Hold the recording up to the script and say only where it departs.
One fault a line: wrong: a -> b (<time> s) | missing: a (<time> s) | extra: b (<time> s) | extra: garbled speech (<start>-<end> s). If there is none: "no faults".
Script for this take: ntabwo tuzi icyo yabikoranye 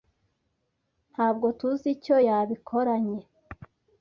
no faults